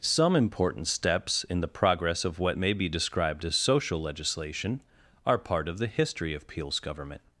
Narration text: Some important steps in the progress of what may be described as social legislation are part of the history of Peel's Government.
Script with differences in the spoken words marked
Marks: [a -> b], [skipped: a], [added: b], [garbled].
Some important steps in the progress of what may be described as social legislation are part of the history of Peel's Government.